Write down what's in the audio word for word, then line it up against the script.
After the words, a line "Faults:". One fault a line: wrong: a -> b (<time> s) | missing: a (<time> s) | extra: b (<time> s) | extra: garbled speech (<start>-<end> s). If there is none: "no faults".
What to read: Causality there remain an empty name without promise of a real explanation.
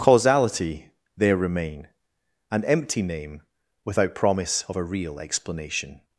Causality there remain an empty name without promise of a real explanation.
Faults:
no faults